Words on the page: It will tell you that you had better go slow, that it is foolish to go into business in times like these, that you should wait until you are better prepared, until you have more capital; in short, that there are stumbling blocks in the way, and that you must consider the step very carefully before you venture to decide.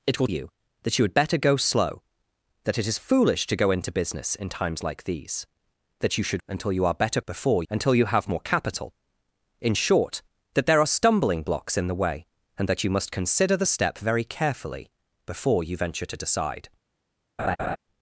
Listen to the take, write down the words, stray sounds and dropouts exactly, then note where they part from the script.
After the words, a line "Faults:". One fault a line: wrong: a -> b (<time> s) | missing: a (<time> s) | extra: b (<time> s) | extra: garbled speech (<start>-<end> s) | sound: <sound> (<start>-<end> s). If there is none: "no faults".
It will you that you had better go slow, that it is foolish to go into business in times like these, that you should until you are better before, until you have more capital; in short, that there are stumbling blocks in the way, and that you must consider the step very carefully before you venture to decide.
Faults:
missing: tell (0.3 s)
missing: wait (6.4 s)
wrong: prepared -> before (7.3 s)
sound: laugh (17.4-17.8 s)